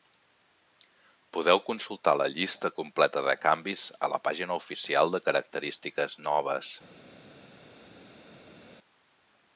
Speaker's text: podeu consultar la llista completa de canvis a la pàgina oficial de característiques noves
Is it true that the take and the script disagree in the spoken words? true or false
false